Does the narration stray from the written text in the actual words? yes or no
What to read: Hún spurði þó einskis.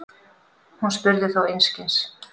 no